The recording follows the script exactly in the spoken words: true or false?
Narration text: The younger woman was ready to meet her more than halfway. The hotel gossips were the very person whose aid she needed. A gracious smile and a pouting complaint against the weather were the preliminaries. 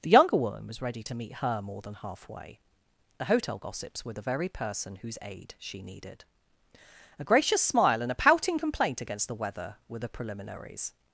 true